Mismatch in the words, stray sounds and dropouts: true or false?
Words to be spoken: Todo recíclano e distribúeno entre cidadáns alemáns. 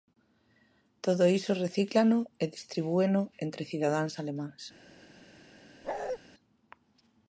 true